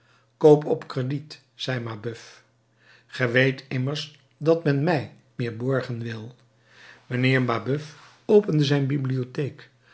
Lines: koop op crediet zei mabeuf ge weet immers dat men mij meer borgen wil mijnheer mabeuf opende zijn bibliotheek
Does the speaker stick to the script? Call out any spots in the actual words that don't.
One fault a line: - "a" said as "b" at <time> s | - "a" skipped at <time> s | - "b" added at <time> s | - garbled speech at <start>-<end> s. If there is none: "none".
none